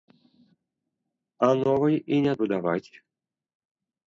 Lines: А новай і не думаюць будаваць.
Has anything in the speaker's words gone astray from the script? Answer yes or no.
yes